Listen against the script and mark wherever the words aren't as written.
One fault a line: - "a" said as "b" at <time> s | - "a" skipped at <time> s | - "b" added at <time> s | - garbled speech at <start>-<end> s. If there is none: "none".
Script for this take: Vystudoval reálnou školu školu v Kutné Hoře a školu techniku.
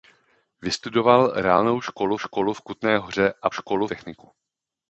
none